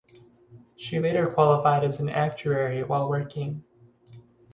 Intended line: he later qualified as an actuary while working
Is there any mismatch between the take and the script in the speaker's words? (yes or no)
yes